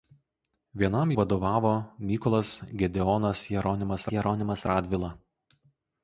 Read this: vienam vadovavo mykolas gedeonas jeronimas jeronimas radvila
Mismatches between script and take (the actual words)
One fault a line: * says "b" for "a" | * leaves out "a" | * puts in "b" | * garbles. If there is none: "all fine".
all fine